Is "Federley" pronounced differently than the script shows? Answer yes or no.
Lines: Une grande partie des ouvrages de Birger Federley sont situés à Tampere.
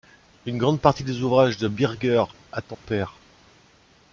yes